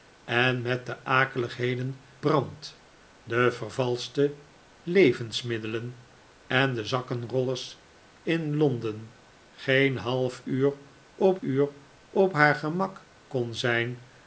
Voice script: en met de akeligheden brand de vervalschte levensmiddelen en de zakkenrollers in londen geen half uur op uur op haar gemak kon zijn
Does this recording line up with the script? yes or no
yes